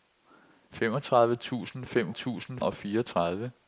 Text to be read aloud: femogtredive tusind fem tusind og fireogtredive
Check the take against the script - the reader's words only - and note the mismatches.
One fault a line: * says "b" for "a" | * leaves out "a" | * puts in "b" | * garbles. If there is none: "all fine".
all fine